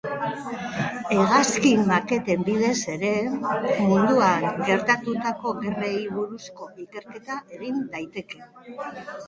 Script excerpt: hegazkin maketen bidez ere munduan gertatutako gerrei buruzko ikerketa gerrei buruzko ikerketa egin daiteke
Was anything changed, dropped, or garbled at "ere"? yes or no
no